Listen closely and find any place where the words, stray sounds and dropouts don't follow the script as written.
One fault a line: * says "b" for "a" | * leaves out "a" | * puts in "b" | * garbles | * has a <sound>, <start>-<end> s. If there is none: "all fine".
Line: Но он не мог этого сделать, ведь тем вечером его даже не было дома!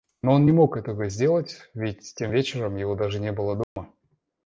* has a dropout, 3.6-3.8 s